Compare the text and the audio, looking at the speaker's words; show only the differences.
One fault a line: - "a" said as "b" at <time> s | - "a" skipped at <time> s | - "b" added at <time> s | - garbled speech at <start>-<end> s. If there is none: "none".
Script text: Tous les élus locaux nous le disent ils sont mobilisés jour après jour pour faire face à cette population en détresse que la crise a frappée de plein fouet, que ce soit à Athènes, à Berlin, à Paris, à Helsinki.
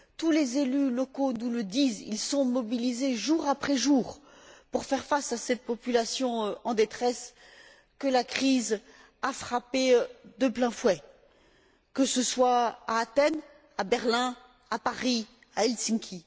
none